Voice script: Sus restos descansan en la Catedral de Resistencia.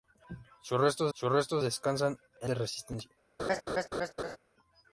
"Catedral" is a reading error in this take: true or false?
true